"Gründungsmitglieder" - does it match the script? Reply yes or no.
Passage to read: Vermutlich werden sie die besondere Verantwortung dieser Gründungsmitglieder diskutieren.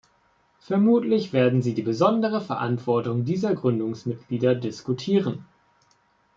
yes